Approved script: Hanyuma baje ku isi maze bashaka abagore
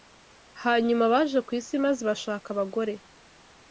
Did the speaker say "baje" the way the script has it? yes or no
yes